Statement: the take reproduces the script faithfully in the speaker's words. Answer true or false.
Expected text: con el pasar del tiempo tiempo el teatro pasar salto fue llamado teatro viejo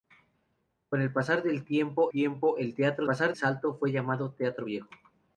true